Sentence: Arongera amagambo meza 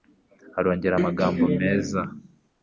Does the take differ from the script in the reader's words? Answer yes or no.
no